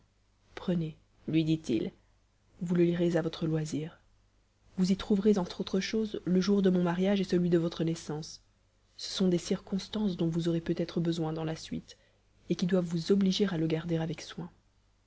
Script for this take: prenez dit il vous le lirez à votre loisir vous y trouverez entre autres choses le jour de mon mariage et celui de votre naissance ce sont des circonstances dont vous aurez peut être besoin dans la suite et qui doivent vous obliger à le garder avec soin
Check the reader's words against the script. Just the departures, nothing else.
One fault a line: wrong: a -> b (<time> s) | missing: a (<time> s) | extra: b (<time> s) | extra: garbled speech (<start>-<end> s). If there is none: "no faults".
extra: lui (1.3 s)